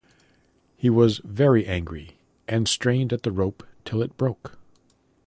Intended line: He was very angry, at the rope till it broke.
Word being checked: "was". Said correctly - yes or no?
yes